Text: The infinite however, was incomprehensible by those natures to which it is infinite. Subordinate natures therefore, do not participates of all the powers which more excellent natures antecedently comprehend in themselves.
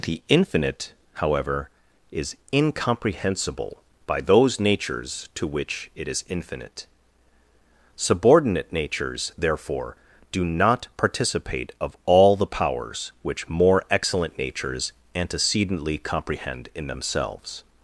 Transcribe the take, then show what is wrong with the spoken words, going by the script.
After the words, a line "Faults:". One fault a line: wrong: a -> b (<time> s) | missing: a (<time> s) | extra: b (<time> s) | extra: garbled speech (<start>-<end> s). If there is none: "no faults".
The infinite however, is incomprehensible by those natures to which it is infinite. Subordinate natures therefore, do not participate of all the powers which more excellent natures antecedently comprehend in themselves.
Faults:
wrong: was -> is (2.1 s)
wrong: participates -> participate (11.0 s)